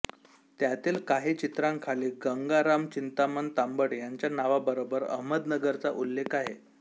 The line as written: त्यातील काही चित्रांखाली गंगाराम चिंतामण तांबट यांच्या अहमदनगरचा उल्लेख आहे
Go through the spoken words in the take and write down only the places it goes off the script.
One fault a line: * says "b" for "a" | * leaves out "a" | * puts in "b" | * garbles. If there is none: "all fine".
* puts in "नावाबरोबर"